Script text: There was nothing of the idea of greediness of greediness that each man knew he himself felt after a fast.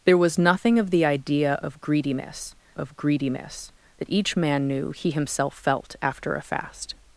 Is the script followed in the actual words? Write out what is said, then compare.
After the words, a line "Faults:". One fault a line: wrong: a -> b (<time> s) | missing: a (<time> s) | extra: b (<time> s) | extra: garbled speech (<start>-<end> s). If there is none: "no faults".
There was nothing of the idea of greediness of greediness that each man knew he himself felt after a fast.
Faults:
no faults